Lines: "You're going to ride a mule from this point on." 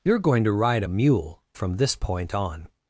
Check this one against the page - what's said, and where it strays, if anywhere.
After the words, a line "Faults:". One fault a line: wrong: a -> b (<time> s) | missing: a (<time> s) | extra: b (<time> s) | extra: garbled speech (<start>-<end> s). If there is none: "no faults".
"You're going to ride a mule from this point on."
Faults:
no faults